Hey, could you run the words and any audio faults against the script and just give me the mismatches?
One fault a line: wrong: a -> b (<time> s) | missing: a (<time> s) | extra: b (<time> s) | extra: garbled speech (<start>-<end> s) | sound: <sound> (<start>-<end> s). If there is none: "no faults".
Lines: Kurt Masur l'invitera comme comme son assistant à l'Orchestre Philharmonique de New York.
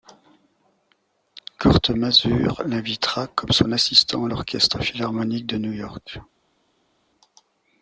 missing: comme (3.5 s)